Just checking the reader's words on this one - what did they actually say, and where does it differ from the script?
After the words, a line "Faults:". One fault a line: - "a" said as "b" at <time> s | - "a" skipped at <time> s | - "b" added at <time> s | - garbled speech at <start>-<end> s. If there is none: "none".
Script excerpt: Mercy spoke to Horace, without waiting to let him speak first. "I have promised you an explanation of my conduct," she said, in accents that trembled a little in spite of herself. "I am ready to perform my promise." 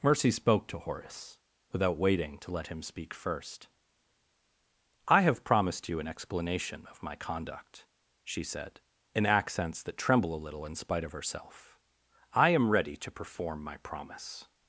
Mercy spoke to Horace, without waiting to let him speak first. "I have promised you an explanation of my conduct," she said, in accents that tremble a little in spite of herself. "I am ready to perform my promise."
Faults:
- "trembled" said as "tremble" at 10.0 s